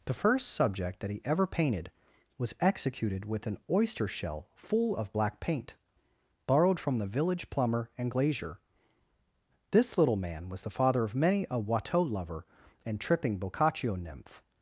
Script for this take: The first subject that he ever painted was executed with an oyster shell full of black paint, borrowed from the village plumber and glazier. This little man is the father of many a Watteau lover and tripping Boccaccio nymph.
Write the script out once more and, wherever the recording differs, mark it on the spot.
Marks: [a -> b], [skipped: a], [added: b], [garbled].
The first subject that he ever painted was executed with an oyster shell full of black paint, borrowed from the village plumber and glazier. This little man [is -> was] the father of many a Watteau lover and tripping Boccaccio nymph.